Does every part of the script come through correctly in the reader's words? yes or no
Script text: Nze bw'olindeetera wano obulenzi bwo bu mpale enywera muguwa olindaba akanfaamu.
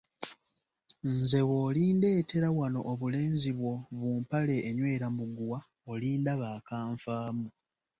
yes